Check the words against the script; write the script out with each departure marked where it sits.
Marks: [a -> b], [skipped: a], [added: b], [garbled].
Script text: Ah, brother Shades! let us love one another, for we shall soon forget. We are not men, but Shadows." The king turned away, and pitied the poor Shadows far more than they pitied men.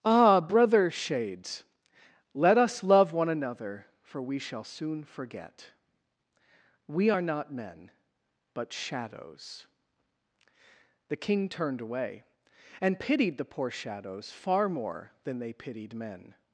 Ah, brother Shades! let us love one another, for we shall soon forget. We are not men, but Shadows." The king turned away, and pitied the poor Shadows far more than they pitied men.